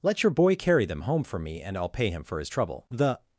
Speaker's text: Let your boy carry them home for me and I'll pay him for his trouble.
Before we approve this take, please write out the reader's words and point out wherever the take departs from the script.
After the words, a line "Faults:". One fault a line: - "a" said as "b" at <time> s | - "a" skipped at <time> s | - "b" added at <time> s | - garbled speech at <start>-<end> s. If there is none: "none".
Let your boy carry them home for me and I'll pay him for his trouble. The
Faults:
- "The" added at 2.9 s